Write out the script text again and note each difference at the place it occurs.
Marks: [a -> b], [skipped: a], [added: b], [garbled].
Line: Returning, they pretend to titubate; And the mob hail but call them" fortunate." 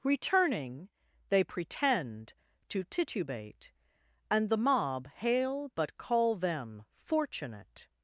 Returning, they pretend to titubate; And the mob hail but call them" fortunate."